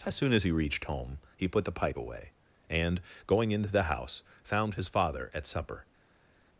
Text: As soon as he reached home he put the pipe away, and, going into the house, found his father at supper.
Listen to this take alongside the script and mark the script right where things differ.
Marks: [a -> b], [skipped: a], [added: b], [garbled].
As soon as he reached home he put the pipe away, and, going into the house, found his father at supper.